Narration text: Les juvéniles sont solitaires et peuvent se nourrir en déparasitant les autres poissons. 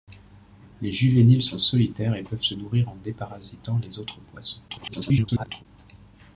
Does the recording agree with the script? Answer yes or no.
no